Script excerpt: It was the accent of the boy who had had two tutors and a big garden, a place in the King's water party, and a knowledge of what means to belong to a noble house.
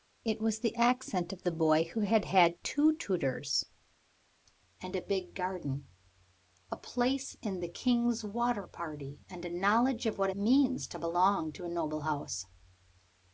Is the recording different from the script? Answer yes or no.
no